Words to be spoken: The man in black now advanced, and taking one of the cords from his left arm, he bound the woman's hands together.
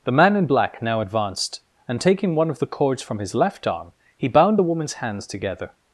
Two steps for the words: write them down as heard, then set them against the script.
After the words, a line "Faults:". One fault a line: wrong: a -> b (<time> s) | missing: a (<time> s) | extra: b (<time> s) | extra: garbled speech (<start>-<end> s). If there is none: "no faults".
The man in black now advanced, and taking one of the cords from his left arm, he bound the woman's hands together.
Faults:
no faults